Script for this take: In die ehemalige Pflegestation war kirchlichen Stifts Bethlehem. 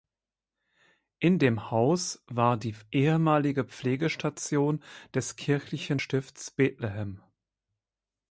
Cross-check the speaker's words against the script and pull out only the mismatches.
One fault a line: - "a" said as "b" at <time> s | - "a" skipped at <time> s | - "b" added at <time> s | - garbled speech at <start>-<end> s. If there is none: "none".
- "dem Haus war" added at 1.4 s
- "war" said as "des" at 5.1 s